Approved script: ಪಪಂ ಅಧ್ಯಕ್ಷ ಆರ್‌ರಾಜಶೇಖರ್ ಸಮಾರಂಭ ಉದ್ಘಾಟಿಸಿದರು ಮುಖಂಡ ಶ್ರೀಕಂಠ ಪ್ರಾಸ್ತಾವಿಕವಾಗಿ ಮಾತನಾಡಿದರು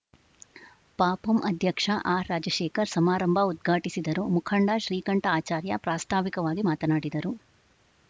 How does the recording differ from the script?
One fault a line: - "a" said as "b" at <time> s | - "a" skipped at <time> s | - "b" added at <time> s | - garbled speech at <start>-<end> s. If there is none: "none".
- "ಆಚಾರ್ಯ" added at 5.3 s